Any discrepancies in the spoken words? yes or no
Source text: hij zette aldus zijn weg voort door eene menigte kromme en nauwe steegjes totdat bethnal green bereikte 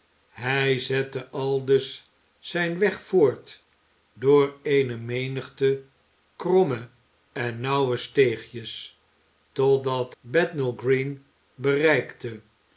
no